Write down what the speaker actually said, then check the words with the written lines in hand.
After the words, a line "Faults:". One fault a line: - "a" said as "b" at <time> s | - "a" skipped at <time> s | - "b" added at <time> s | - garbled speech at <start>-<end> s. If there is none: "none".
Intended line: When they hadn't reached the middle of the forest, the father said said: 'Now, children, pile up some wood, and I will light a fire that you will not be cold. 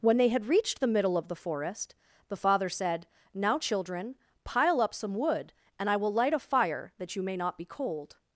When they had reached the middle of the forest, the father said: 'Now, children, pile up some wood, and I will light a fire that you may not be cold.
Faults:
- "hadn't" said as "had" at 0.3 s
- "said" skipped at 3.1 s
- "will" said as "may" at 7.2 s